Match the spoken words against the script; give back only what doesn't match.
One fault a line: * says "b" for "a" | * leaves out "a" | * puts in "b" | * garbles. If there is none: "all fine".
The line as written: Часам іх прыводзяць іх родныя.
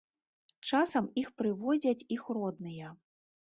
all fine